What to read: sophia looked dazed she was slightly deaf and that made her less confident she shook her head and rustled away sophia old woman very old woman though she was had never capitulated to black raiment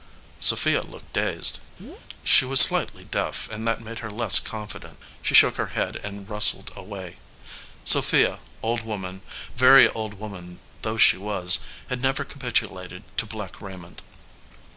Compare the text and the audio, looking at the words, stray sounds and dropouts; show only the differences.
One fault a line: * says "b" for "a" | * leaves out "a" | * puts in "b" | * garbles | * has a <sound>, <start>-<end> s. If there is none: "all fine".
* has a chirp, 1.8-2.0 s